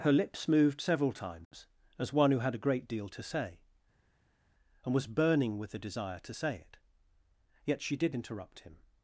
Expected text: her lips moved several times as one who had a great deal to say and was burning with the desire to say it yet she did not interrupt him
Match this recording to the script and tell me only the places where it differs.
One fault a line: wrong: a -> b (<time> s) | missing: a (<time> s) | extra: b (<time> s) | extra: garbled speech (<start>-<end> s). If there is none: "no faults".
missing: not (8.1 s)